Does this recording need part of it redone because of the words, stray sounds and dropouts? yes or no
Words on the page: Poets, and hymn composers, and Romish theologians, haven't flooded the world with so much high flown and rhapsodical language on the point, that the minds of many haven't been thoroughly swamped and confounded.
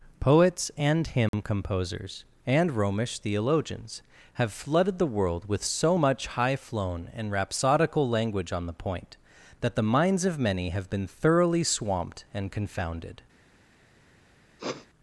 yes